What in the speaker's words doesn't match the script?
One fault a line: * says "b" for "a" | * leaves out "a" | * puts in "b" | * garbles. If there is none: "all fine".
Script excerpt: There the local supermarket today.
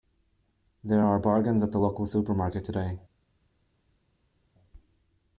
* puts in "are bargains at"